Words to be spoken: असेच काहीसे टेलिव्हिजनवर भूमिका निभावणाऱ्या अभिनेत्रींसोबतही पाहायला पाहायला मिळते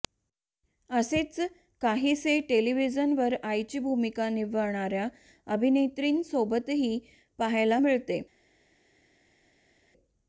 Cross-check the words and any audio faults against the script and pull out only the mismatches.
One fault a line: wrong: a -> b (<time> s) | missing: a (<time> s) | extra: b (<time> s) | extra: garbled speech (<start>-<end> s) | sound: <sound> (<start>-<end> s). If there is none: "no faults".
extra: आईची (3.4 s)
missing: पाहायला (7.8 s)